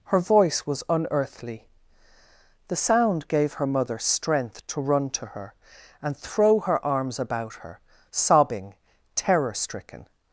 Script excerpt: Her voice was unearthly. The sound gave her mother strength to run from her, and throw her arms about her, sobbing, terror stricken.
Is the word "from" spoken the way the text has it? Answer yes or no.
no